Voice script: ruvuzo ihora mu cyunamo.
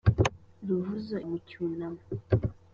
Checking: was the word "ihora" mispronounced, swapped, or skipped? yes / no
yes